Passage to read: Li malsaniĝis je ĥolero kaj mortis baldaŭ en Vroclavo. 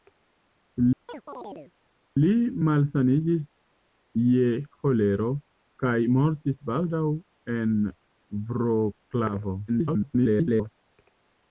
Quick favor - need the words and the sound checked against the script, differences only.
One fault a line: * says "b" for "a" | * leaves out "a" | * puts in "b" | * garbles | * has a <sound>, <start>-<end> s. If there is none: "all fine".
* has a chirp, 1.1-1.7 s
* garbles